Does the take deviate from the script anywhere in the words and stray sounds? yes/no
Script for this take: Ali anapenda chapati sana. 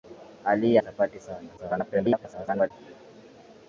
yes